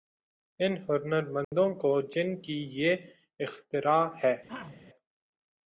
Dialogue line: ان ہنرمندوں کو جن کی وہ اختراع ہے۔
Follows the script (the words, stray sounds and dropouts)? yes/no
no